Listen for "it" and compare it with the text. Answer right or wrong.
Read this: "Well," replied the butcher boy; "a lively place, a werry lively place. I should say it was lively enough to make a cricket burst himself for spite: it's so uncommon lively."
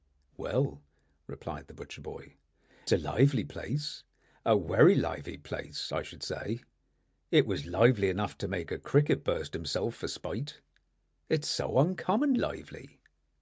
right